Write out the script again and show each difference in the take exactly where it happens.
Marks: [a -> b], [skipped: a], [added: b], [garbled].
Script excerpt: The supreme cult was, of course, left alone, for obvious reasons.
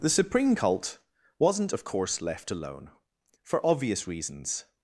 The supreme cult [was, -> wasn't] of course, left alone, for obvious reasons.